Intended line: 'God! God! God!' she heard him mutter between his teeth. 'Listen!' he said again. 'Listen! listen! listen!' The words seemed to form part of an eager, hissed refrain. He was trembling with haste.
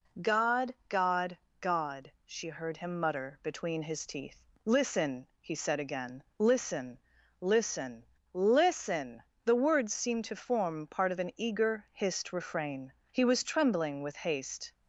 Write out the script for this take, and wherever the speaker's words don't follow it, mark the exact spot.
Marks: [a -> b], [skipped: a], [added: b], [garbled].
'God! God! God!' she heard him mutter between his teeth. 'Listen!' he said again. 'Listen! listen! listen!' The words seemed to form part of an eager, hissed refrain. He was trembling with haste.